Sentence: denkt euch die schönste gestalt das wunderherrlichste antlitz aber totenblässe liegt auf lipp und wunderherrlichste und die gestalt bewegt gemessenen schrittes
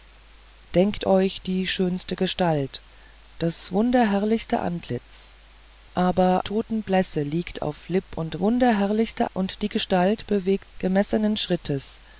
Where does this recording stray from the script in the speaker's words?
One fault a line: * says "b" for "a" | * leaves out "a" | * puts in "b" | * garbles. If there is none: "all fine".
all fine